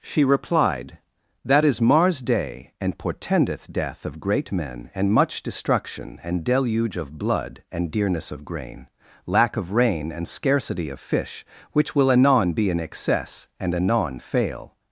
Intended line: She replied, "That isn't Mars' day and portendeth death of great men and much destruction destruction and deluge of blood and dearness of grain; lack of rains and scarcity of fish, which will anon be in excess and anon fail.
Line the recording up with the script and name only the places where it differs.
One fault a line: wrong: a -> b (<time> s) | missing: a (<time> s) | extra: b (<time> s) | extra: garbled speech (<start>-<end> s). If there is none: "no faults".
wrong: isn't -> is (1.6 s)
missing: destruction (6.2 s)
wrong: rains -> rain (9.7 s)